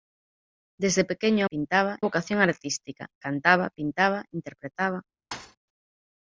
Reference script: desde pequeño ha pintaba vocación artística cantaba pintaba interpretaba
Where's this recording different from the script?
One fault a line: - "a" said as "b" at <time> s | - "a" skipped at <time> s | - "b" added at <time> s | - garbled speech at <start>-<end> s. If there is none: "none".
none